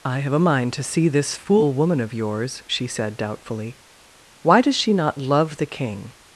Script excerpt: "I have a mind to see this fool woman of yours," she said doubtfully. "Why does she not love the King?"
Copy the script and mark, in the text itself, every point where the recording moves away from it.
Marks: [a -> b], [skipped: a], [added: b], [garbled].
"I have a mind to see this fool woman of yours," she said doubtfully. "Why does she not love the King?"